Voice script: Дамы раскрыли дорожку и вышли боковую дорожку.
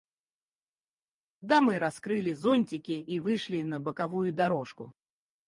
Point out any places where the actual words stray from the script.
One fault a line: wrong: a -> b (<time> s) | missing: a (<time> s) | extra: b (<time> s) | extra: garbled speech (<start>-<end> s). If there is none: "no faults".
wrong: дорожку -> зонтики (2.3 s)
extra: на (3.6 s)